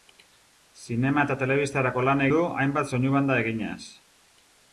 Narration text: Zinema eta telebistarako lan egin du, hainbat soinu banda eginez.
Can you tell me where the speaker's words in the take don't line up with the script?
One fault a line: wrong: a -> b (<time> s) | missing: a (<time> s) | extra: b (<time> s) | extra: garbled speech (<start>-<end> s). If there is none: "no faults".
missing: egin (2.2 s)